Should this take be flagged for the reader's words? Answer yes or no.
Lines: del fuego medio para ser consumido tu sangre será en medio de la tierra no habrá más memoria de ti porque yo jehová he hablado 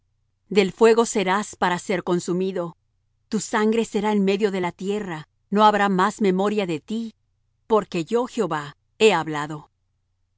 yes